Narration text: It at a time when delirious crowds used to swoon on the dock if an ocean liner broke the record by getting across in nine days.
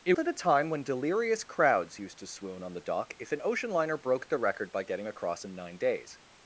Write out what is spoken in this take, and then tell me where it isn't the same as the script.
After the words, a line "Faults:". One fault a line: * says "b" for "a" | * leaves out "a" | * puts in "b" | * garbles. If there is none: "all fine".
It at a time when delirious crowds used to swoon on the dock if an ocean liner broke the record by getting across in nine days.
Faults:
all fine